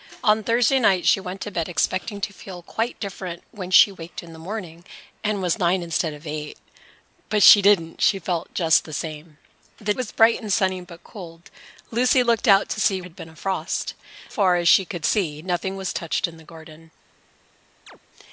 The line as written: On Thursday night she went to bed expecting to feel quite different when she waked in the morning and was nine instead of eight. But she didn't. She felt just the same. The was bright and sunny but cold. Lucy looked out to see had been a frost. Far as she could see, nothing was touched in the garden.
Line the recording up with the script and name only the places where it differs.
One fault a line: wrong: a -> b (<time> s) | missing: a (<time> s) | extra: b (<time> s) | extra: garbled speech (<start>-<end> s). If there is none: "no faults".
no faults